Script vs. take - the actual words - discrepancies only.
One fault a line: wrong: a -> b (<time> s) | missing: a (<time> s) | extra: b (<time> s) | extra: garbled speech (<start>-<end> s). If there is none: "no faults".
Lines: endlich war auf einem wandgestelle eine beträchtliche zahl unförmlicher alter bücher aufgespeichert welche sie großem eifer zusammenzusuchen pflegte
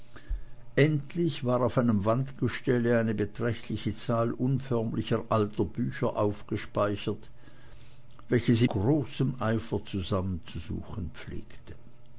no faults